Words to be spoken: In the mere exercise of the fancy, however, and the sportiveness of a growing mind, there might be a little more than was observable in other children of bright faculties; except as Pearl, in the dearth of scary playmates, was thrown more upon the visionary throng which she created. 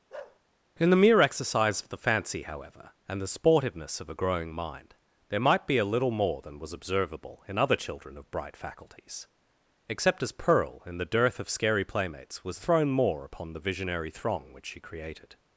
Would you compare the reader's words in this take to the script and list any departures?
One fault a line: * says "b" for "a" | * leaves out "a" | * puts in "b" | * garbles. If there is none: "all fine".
all fine